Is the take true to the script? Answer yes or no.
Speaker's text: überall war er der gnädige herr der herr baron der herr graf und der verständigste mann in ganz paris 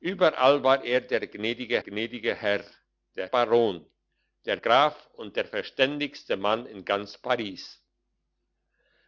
no